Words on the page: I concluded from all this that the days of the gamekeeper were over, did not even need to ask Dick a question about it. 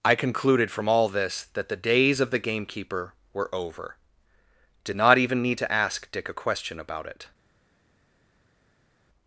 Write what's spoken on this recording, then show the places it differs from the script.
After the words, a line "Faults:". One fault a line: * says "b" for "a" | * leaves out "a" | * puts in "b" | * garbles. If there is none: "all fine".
I concluded from all this that the days of the gamekeeper were over, did not even need to ask Dick a question about it.
Faults:
all fine